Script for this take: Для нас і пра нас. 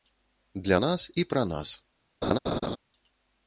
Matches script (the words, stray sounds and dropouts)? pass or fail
fail